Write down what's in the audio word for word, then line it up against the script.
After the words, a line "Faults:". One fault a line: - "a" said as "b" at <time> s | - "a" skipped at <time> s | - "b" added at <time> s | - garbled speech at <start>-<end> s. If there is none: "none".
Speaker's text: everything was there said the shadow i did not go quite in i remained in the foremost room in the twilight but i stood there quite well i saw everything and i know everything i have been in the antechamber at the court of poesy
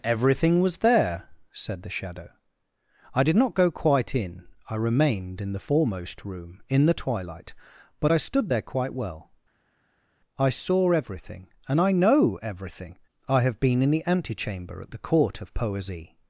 everything was there said the shadow i did not go quite in i remained in the foremost room in the twilight but i stood there quite well i saw everything and i know everything i have been in the antechamber at the court of poesy
Faults:
none